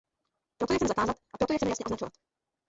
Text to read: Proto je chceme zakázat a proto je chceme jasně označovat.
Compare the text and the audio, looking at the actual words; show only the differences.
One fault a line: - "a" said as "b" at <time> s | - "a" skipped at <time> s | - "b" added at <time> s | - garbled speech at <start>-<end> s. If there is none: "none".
none